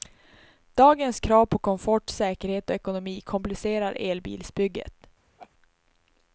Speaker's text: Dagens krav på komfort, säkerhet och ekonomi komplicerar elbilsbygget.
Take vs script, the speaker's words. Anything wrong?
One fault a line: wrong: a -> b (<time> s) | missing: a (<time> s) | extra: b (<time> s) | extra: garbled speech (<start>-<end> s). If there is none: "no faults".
no faults